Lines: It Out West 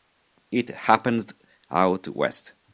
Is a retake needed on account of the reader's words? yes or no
yes